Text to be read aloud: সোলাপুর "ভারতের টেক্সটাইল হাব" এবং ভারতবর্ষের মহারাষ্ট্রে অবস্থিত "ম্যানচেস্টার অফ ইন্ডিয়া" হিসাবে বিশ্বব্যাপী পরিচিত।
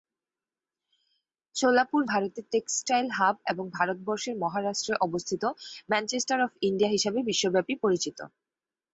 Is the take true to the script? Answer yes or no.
yes